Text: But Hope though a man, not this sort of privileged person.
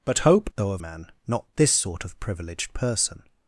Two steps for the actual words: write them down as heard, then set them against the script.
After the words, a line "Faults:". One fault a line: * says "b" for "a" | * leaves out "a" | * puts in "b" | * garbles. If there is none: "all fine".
But Hope though a man, not this sort of privileged person.
Faults:
all fine